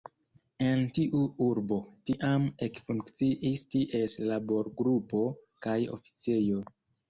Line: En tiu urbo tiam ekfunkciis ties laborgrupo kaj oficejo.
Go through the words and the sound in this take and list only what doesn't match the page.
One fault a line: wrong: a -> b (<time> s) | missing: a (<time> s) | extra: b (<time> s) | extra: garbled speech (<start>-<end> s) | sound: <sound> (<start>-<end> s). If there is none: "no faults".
no faults